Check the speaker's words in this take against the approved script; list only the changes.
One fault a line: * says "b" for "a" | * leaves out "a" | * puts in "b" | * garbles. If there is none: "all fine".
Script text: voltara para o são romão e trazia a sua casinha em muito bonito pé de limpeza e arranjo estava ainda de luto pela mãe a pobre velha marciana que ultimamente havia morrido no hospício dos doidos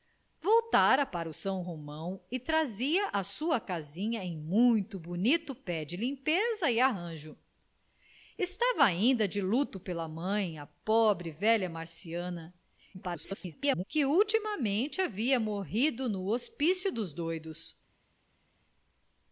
* garbles